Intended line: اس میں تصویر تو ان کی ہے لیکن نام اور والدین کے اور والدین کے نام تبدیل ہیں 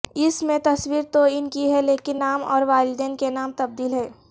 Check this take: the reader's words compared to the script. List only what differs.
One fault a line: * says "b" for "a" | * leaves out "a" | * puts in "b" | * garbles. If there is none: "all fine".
* leaves out "اور والدین کے"